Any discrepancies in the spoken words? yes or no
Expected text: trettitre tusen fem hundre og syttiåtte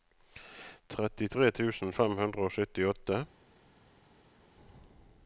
no